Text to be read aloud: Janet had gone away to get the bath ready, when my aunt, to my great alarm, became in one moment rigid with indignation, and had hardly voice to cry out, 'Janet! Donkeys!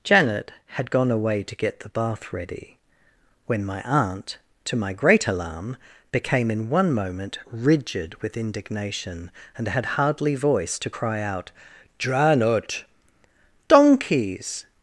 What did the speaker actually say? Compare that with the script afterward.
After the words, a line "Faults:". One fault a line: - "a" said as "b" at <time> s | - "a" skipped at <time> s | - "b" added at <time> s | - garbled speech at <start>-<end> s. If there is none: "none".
Janet had gone away to get the bath ready, when my aunt, to my great alarm, became in one moment rigid with indignation, and had hardly voice to cry out, 'Janet! Donkeys!
Faults:
none